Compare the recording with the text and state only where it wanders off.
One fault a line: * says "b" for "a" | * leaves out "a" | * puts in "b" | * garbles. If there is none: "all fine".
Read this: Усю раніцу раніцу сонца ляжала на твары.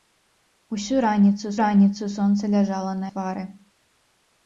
all fine